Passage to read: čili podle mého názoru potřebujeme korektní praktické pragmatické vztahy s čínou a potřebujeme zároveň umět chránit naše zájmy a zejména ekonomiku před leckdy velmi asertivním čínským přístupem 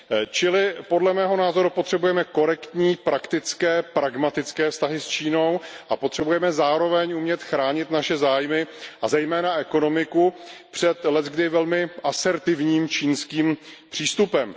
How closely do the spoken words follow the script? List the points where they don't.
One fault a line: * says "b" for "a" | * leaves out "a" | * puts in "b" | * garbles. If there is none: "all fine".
all fine